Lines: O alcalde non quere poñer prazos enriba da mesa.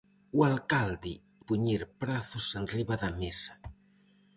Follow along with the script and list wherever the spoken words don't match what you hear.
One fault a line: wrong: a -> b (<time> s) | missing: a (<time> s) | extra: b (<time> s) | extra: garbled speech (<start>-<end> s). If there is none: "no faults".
missing: non quere (1.1 s)